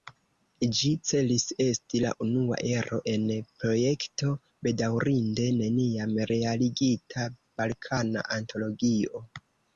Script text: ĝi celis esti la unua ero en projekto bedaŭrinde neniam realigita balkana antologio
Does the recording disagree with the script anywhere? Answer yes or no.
no